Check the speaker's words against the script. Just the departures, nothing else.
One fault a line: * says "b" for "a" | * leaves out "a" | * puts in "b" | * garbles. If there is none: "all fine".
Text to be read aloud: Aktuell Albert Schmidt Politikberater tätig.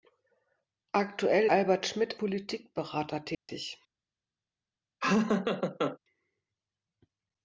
all fine